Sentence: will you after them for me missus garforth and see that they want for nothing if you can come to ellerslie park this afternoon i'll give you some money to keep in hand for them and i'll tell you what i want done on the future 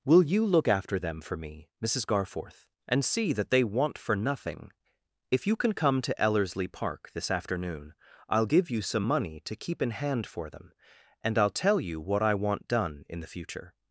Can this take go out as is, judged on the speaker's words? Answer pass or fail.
fail